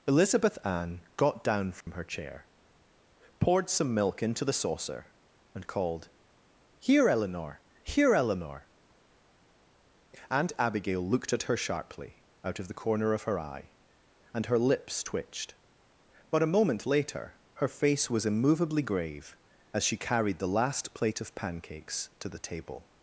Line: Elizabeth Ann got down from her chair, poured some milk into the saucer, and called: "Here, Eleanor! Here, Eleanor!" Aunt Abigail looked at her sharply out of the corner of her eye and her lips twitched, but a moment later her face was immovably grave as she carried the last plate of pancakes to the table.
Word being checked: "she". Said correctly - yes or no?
yes